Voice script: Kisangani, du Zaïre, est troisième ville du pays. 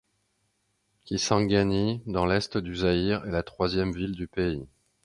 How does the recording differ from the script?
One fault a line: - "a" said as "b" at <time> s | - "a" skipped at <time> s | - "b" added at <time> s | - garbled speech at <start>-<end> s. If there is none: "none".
- "dans l'est" added at 2.1 s
- "la" added at 3.3 s